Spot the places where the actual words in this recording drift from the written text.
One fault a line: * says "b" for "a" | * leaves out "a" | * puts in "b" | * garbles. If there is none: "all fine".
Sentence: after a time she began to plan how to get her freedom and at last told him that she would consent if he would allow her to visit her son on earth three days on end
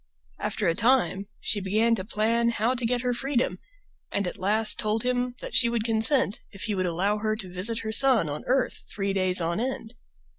all fine